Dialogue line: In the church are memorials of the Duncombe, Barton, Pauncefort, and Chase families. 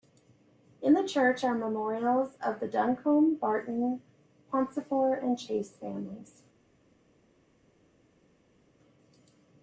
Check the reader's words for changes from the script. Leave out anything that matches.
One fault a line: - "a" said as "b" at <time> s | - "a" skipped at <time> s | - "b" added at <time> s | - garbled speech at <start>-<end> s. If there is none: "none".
none